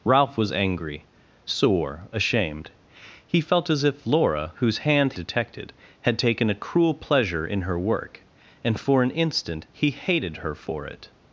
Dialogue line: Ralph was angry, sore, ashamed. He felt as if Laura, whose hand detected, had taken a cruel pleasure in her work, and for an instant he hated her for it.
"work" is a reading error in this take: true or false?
false